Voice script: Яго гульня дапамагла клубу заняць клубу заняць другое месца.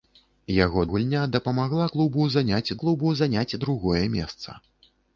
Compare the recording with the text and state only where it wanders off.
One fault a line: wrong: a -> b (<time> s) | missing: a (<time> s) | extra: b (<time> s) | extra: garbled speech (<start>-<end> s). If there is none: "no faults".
no faults